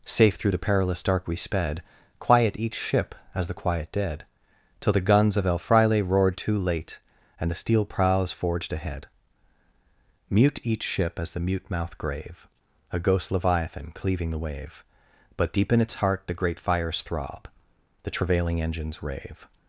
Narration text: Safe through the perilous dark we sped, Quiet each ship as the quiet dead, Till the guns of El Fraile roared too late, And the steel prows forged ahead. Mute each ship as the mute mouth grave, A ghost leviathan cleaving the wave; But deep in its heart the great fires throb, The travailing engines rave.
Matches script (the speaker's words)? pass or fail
pass